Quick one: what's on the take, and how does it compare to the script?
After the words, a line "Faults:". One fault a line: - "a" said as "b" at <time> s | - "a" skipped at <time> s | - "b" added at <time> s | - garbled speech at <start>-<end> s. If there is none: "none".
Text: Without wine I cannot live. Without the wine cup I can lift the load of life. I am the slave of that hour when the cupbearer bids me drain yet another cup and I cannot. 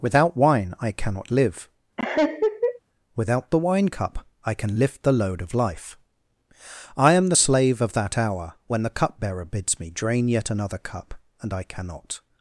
Without wine I cannot live. Without the wine cup I can lift the load of life. I am the slave of that hour when the cupbearer bids me drain yet another cup and I cannot.
Faults:
none